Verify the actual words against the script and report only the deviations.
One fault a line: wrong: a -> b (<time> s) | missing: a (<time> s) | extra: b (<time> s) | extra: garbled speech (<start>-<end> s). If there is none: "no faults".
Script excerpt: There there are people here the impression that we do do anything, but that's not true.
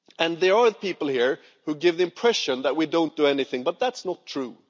missing: there (0.6 s)
extra: who give (1.6 s)
wrong: do -> don't (2.9 s)